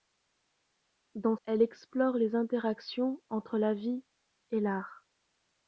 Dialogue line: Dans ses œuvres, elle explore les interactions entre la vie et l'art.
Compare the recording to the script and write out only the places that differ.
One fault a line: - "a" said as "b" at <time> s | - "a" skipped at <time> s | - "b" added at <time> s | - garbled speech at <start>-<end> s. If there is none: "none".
- "ses œuvres" skipped at 1.4 s